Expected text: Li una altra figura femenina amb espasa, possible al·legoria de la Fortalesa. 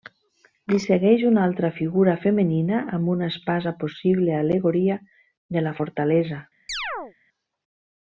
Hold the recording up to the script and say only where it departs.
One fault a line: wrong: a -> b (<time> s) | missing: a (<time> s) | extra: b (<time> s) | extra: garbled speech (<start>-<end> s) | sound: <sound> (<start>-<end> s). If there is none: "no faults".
extra: segueix (0.8 s)
extra: una (3.2 s)
sound: chirp (6.7-7.1 s)